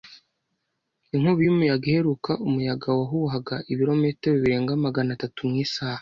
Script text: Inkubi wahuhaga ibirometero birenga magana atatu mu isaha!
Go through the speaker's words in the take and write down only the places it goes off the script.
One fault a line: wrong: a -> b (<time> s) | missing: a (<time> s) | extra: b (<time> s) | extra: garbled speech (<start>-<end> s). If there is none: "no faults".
extra: y'umuyaga iheruka umuyaga (1.4 s)